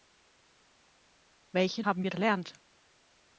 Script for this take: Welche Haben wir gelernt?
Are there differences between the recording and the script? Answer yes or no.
no